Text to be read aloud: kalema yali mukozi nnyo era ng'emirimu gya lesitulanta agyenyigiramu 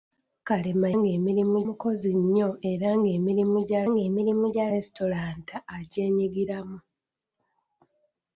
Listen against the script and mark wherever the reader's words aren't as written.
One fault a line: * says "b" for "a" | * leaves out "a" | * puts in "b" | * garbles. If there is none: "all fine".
* says "ng'emirimu" for "yali"
* puts in "ng'emirimu gya"